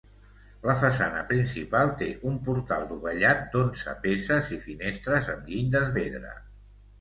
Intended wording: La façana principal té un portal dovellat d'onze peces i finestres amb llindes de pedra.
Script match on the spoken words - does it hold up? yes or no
no